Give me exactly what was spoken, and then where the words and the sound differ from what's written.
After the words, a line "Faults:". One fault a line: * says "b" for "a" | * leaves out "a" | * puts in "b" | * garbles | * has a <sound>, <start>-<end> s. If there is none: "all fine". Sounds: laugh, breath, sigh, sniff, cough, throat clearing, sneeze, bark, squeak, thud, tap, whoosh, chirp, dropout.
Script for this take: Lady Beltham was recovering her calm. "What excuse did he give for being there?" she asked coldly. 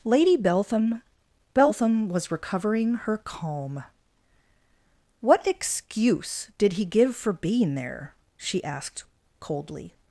Lady Beltham Beltham was recovering her calm. "What excuse did he give for being there?" she asked coldly.
Faults:
* puts in "Beltham"